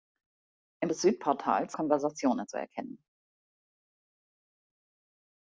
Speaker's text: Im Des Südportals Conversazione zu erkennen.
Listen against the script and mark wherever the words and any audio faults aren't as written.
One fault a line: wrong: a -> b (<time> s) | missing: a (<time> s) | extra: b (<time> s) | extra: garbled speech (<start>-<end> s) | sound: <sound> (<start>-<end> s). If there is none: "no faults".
no faults